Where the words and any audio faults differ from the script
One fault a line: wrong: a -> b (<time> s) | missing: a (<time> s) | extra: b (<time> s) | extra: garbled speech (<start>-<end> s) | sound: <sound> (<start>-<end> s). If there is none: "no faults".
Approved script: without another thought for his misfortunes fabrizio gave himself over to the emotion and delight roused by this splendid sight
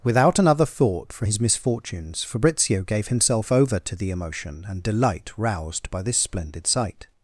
no faults